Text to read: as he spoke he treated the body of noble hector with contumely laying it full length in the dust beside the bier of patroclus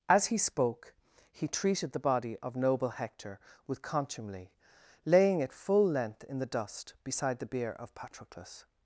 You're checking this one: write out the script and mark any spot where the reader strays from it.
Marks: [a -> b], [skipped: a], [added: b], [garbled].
as he spoke he treated the body of noble hector with contumely laying it full length in the dust beside the bier of patroclus